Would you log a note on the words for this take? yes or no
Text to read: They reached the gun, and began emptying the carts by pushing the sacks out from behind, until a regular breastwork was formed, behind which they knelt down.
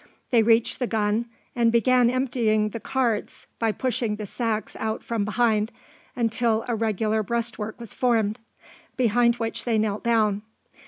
no